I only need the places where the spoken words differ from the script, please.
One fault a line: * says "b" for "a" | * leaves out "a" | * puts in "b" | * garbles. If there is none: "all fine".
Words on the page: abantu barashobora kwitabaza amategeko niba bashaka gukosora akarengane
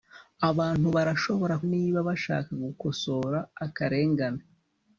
* leaves out "kwitabaza amategeko"